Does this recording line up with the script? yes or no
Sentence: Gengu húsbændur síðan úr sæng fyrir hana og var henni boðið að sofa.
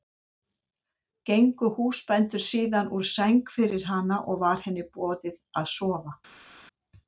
yes